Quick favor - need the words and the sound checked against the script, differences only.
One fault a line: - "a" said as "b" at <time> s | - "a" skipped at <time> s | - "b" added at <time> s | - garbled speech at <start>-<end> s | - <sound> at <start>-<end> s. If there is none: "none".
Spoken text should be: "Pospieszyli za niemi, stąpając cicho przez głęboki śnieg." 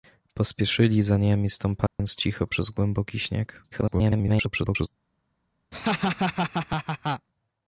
- dropout at 1.9-2.0 s
- garbled speech at 3.7-4.9 s
- laugh at 5.7-7.3 s